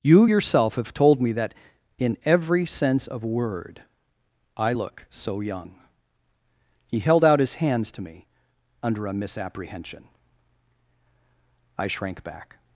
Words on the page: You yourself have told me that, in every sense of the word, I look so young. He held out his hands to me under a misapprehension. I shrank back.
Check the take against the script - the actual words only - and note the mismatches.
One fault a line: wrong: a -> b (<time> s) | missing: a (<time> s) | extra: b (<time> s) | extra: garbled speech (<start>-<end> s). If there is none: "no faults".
missing: the (3.2 s)